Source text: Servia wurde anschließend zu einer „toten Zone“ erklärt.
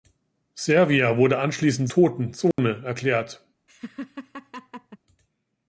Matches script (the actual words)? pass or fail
fail